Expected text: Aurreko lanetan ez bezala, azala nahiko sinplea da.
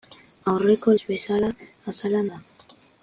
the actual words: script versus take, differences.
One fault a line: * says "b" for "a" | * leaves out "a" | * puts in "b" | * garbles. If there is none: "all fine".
* leaves out "lanetan"
* leaves out "nahiko sinplea"